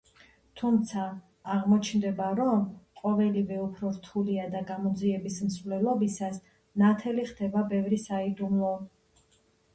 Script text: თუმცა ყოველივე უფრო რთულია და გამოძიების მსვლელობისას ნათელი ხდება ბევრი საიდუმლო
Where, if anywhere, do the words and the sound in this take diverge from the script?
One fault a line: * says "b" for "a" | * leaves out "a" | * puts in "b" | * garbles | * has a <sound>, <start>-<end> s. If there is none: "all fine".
* puts in "აღმოჩნდება რომ"